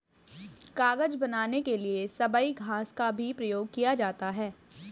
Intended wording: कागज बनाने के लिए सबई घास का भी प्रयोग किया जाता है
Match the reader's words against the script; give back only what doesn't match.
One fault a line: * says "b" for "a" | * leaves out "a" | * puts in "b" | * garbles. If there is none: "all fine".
all fine